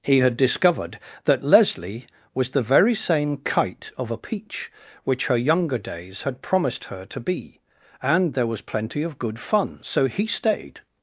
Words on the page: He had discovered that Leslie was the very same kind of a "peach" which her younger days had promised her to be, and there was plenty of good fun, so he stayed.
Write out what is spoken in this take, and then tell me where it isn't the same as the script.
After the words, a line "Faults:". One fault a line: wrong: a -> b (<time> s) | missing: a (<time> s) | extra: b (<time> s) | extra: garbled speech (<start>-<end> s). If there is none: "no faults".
He had discovered that Leslie was the very same kite of a "peach" which her younger days had promised her to be, and there was plenty of good fun, so he stayed.
Faults:
wrong: kind -> kite (3.4 s)